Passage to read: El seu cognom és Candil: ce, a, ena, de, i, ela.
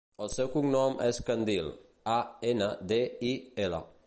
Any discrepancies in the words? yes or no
yes